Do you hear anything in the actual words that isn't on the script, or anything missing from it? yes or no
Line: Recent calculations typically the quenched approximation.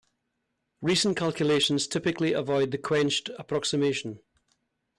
yes